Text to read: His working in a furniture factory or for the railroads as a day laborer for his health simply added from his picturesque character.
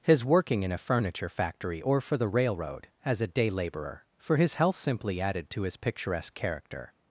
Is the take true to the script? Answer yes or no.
no